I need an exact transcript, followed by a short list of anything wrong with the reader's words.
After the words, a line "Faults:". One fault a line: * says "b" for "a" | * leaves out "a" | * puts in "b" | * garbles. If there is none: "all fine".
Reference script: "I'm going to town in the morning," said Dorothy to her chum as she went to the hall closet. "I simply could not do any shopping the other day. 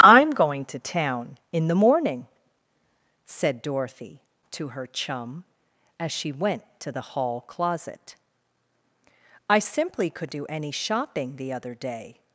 "I'm going to town in the morning," said Dorothy to her chum as she went to the hall closet. "I simply could do any shopping the other day.
Faults:
* leaves out "not"